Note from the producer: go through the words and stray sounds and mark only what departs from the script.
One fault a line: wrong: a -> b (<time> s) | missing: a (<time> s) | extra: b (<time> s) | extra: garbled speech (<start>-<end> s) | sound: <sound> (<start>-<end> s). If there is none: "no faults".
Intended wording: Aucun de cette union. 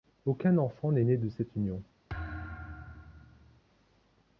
extra: enfant n'est né (0.6 s)
sound: thud (2.1-3.6 s)